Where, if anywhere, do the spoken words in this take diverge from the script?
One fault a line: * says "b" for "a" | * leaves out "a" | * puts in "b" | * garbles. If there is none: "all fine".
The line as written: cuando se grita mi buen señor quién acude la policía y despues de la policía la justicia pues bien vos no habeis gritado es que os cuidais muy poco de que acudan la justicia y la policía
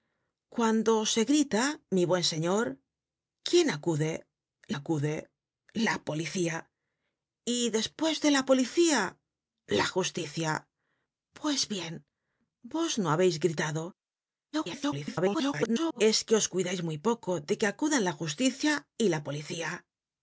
* puts in "acude"
* garbles